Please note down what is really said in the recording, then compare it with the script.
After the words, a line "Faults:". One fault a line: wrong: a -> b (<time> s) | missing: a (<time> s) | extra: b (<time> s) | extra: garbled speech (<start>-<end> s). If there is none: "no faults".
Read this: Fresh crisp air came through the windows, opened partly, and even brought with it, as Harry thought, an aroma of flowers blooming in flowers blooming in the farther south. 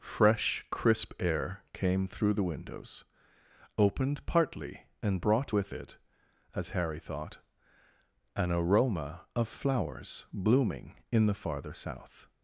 Fresh crisp air came through the windows, opened partly, and brought with it, as Harry thought, an aroma of flowers blooming in the farther south.
Faults:
missing: even (5.2 s)
missing: flowers blooming in (11.3 s)